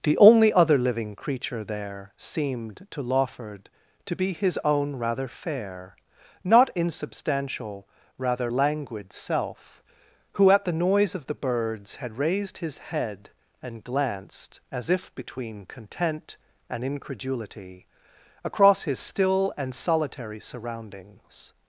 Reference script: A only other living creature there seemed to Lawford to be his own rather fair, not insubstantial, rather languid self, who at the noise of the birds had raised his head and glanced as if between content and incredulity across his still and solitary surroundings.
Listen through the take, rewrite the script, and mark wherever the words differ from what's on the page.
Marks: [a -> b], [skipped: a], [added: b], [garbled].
[A -> The] only other living creature there seemed to Lawford to be his own rather fair, not insubstantial, rather languid self, who at the noise of the birds had raised his head and glanced as if between content and incredulity across his still and solitary surroundings.